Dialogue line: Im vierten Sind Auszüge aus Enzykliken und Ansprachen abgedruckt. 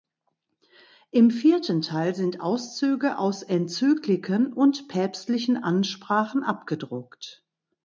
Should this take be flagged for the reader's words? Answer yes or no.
yes